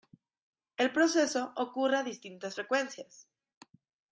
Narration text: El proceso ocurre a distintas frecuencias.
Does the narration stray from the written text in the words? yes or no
no